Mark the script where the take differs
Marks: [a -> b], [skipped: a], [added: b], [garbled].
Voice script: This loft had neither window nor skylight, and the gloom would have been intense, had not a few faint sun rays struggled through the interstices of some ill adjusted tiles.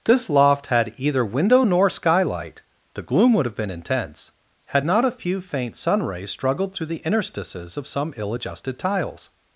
This loft had [neither -> either] window nor skylight, [skipped: and] the gloom would have been intense, had not a few faint sun rays struggled through the interstices of some ill adjusted tiles.